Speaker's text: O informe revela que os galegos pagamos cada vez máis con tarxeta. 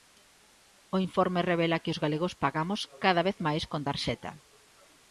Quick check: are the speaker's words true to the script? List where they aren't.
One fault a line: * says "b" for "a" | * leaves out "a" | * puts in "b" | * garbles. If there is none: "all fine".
all fine